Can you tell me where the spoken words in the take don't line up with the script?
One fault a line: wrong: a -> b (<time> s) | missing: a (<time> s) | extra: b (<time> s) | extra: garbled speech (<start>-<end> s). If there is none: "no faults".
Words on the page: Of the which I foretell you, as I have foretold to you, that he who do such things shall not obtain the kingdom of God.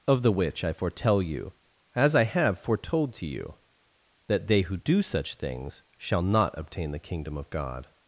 wrong: he -> they (4.5 s)